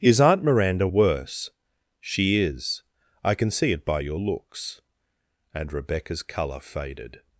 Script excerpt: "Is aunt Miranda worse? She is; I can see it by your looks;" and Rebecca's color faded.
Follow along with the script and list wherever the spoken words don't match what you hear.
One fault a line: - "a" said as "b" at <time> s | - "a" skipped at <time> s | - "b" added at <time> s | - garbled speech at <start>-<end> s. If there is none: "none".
none